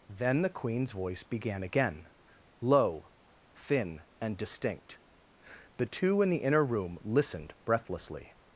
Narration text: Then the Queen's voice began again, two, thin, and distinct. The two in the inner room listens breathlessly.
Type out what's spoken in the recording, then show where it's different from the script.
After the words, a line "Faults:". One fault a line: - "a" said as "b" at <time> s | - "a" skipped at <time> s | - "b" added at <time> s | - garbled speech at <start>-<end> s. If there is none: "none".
Then the Queen's voice began again, low, thin, and distinct. The two in the inner room listened breathlessly.
Faults:
- "two" said as "low" at 2.6 s
- "listens" said as "listened" at 7.0 s